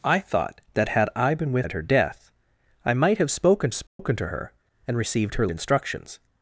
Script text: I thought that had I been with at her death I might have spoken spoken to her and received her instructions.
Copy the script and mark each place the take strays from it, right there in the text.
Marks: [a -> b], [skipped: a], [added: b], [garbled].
I thought that had I been with at her death I might have spoken spoken to her and received her instructions.